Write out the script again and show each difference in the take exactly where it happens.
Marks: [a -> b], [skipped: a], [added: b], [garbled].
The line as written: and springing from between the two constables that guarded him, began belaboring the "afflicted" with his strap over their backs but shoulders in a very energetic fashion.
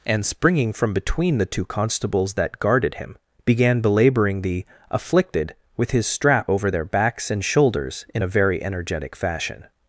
and springing from between the two constables that guarded him, began belaboring the "afflicted" with his strap over their backs [but -> and] shoulders in a very energetic fashion.